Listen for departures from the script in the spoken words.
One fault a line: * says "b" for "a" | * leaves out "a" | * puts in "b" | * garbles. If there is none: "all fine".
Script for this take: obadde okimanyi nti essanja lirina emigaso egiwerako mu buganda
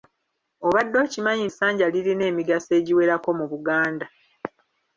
* leaves out "nti"